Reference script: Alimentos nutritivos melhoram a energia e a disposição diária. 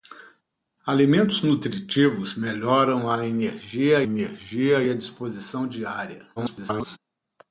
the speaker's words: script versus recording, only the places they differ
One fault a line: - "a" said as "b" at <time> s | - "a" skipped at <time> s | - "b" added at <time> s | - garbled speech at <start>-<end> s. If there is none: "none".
- "energia" added at 4.0 s
- garbled speech at 6.4-7.0 s